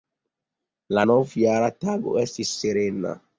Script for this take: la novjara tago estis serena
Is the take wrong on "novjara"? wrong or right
right